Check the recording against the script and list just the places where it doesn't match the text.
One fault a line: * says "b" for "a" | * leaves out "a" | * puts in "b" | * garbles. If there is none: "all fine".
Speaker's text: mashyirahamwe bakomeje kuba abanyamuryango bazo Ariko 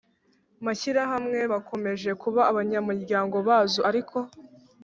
all fine